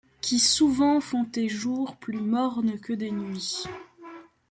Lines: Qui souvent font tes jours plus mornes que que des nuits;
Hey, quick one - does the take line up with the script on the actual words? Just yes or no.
no